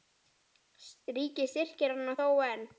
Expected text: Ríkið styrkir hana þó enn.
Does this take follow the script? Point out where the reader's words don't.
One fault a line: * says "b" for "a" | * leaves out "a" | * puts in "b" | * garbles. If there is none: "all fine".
all fine